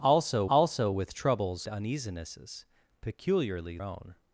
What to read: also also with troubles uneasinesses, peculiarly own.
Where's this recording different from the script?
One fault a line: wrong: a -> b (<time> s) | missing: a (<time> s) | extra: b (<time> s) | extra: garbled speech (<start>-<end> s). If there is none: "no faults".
no faults